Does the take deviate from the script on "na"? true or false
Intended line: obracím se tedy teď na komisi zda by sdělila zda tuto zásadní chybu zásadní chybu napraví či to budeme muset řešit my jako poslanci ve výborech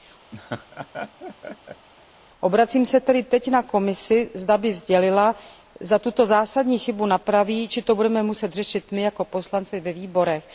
false